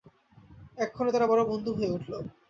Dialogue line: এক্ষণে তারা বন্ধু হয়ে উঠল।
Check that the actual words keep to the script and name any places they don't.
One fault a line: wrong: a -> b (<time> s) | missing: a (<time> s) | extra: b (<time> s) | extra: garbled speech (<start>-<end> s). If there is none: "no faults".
extra: বড় (1.2 s)